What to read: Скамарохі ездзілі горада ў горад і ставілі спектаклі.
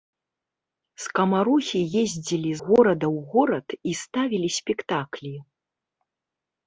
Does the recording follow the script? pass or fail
pass